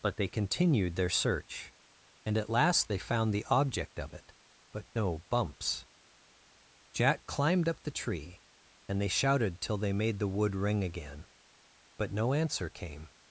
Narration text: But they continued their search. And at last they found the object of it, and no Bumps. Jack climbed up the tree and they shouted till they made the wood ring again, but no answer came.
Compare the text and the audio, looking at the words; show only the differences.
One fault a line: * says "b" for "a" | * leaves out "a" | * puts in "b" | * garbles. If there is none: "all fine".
* says "but" for "and"